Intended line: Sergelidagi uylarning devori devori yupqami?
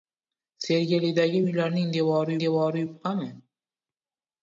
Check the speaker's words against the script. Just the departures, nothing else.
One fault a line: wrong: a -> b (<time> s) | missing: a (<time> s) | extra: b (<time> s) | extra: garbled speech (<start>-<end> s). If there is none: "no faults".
no faults